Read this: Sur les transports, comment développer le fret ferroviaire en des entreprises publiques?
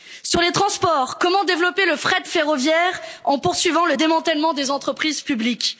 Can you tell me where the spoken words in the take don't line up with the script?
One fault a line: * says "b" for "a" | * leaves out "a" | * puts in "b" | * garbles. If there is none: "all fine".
* puts in "poursuivant le démantèlement"